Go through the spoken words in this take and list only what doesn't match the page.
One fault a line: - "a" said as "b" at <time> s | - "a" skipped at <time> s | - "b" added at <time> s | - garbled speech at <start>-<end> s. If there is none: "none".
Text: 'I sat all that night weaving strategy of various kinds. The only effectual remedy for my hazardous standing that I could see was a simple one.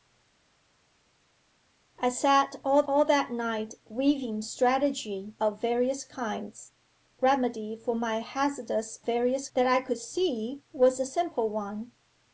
- "all" added at 2.9 s
- "The only effectual" skipped at 6.7 s
- "standing" said as "various" at 9.0 s